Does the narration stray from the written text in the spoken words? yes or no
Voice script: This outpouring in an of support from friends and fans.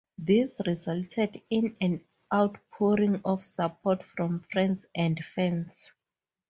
yes